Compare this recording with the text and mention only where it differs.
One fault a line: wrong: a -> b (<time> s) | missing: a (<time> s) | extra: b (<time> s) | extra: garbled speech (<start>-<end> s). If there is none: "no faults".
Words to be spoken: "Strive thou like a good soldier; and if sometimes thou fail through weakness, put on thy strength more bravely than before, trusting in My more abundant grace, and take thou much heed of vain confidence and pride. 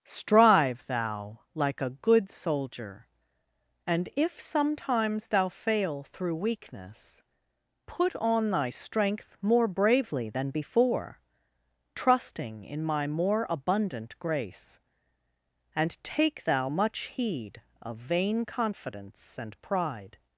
no faults